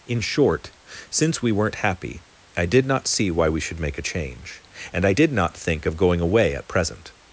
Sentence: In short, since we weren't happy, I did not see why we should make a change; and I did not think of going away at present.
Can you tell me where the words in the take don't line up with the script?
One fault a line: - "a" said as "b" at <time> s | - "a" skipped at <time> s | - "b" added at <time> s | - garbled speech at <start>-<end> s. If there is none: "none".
none